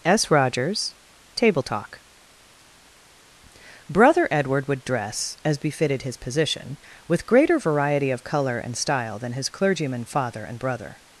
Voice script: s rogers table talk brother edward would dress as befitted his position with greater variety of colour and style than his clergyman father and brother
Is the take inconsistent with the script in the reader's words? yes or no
no